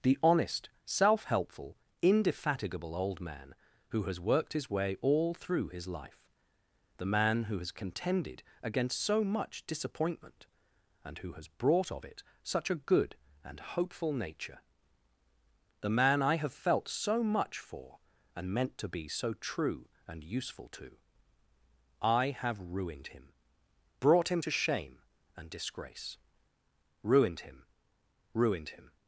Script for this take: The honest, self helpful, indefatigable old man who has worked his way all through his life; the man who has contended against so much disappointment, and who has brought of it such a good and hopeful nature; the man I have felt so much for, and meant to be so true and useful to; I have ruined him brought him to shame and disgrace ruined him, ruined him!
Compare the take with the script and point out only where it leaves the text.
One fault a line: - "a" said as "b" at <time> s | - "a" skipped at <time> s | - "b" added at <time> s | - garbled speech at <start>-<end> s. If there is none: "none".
none